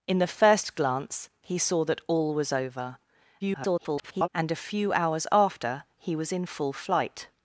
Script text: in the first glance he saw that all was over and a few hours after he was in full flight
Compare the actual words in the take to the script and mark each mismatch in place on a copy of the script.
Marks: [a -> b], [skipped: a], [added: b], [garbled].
in the first glance he saw that all was over [garbled] and a few hours after he was in full flight